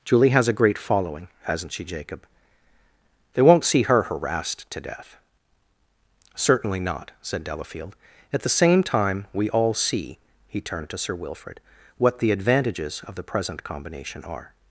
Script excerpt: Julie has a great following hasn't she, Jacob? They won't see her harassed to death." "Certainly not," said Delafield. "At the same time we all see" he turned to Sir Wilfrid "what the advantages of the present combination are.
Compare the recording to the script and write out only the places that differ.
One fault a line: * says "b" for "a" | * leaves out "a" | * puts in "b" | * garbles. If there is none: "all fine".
all fine